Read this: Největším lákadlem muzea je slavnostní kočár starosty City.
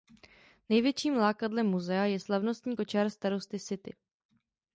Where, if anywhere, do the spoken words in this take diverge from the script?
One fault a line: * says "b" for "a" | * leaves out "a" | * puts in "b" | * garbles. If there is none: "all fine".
all fine